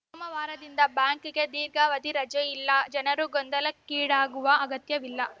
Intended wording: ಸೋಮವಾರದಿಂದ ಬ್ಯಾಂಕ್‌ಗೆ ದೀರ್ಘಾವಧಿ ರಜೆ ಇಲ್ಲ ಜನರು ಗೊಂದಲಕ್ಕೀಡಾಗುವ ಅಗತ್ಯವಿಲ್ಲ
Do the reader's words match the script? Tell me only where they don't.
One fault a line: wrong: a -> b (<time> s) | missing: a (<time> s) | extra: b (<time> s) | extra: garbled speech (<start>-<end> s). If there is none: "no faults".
no faults